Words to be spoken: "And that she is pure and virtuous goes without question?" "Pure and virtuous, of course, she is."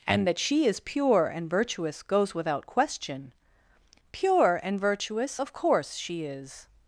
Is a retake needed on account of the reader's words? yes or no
no